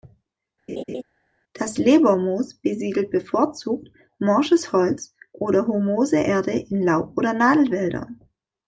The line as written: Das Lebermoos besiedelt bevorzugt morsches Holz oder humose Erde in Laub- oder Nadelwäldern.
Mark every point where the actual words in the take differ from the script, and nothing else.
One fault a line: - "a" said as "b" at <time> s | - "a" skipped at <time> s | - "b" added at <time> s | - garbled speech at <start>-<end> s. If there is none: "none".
none